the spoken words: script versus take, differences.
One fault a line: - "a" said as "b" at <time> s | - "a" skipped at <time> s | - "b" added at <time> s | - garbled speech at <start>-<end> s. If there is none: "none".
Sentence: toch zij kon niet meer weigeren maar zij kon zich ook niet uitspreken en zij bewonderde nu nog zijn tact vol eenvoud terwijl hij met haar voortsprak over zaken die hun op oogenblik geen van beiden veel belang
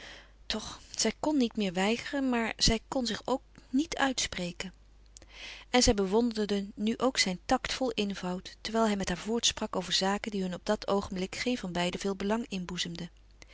- "nog" said as "ook" at 7.0 s
- "dat" added at 10.7 s